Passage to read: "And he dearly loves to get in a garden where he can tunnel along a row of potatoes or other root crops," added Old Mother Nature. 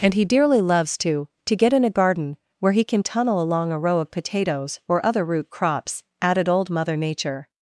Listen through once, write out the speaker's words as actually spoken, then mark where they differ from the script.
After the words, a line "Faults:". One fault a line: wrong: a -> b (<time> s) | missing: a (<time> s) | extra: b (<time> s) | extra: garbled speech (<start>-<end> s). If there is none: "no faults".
"And he dearly loves to to get in a garden where he can tunnel along a row of potatoes or other root crops," added Old Mother Nature.
Faults:
extra: to (1.4 s)